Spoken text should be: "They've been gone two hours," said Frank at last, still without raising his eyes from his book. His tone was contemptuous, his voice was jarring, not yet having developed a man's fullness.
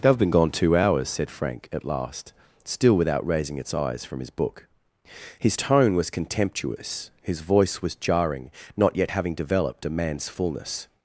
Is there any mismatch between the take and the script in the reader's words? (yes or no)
yes